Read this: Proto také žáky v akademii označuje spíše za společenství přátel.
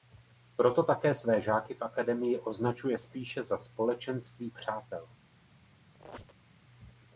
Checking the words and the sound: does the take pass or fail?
fail